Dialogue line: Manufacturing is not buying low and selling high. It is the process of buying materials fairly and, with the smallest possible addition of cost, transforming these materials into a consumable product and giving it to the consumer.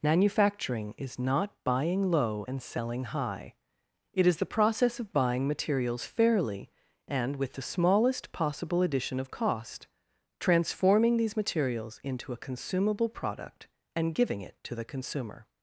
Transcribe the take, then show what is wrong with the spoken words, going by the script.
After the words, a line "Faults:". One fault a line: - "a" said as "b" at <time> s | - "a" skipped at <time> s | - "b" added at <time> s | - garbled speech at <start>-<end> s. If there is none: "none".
Manufacturing is not buying low and selling high. It is the process of buying materials fairly and, with the smallest possible addition of cost, transforming these materials into a consumable product and giving it to the consumer.
Faults:
none